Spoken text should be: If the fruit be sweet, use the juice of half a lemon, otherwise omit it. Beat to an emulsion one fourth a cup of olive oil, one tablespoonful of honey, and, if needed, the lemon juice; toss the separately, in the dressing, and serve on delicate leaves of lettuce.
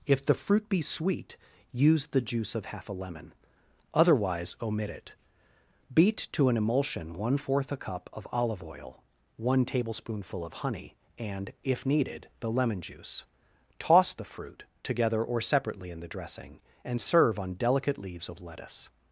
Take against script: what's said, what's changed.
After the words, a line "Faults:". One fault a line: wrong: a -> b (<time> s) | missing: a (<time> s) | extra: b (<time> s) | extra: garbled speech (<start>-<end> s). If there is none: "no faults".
If the fruit be sweet, use the juice of half a lemon, otherwise omit it. Beat to an emulsion one fourth a cup of olive oil, one tablespoonful of honey, and, if needed, the lemon juice; toss the fruit, together or separately, in the dressing, and serve on delicate leaves of lettuce.
Faults:
extra: fruit together or (14.2 s)